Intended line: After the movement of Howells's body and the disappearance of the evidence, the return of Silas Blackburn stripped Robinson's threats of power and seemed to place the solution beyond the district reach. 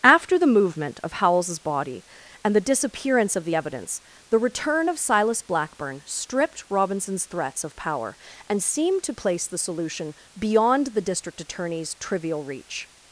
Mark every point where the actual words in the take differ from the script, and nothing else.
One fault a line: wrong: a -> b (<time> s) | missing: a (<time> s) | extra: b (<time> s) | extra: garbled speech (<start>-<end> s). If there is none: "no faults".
extra: attorney's trivial (11.4 s)